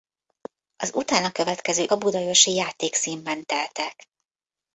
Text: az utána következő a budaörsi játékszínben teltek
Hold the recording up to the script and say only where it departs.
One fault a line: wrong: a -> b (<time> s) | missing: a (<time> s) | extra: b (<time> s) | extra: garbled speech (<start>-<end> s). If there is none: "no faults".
no faults